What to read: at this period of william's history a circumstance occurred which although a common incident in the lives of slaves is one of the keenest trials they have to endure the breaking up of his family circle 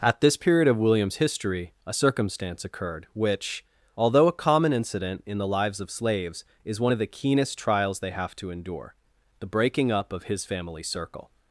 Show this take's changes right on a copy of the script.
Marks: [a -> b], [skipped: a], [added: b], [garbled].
at this period of william's history a circumstance occurred which although a common incident in the lives of slaves is one of the keenest trials they have to endure the breaking up of his family circle